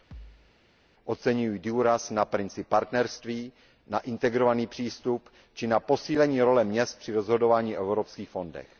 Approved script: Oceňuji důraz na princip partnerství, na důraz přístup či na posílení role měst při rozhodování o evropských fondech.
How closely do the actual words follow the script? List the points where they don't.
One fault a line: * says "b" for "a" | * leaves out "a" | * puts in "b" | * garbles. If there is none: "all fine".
* says "integrovaný" for "důraz"